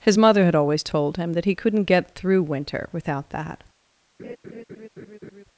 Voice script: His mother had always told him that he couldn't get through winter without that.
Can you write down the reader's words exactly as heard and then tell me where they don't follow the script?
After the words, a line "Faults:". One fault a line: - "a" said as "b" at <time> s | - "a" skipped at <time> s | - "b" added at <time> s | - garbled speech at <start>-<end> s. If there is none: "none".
His mother had always told him that he couldn't get through winter without that.
Faults:
none